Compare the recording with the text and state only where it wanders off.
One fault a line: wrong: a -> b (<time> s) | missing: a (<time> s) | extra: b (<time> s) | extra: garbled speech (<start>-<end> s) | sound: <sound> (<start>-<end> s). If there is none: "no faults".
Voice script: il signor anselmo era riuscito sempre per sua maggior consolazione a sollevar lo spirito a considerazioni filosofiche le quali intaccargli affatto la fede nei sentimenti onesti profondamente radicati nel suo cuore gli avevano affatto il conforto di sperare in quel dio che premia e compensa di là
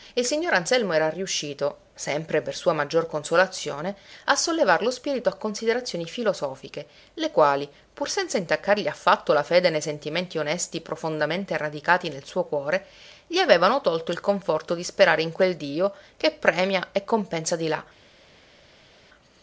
extra: pur senza (7.9 s)
wrong: affatto -> tolto (13.8 s)